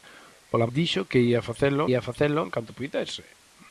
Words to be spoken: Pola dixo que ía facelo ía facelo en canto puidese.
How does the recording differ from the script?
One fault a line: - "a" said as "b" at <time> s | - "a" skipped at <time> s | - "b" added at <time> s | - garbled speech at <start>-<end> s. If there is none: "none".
none